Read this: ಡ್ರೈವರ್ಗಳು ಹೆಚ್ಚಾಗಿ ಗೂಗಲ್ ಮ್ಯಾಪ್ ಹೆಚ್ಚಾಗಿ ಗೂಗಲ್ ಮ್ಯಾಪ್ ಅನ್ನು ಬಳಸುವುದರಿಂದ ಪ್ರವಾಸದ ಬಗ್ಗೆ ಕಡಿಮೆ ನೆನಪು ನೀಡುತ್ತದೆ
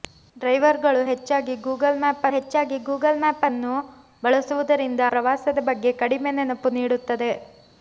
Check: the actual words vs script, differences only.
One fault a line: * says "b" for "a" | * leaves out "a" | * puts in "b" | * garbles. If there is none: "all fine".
all fine